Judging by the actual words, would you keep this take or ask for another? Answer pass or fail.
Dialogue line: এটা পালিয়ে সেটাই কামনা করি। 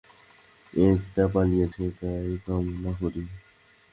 pass